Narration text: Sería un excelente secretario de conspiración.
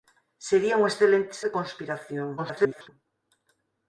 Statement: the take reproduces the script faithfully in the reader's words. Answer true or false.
false